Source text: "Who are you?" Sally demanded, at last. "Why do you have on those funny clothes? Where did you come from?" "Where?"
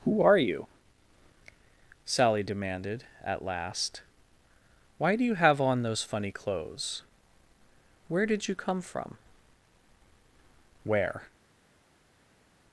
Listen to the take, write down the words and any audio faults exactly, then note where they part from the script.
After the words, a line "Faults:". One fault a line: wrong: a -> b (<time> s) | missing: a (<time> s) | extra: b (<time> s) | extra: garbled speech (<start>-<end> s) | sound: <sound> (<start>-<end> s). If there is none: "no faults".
"Who are you?" Sally demanded, at last. "Why do you have on those funny clothes? Where did you come from?" "Where?"
Faults:
no faults